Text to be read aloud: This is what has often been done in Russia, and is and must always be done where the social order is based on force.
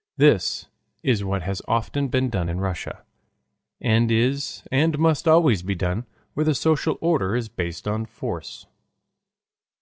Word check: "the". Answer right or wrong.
right